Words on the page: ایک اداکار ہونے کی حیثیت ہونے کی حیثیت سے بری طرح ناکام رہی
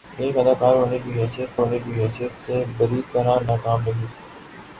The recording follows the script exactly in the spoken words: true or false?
true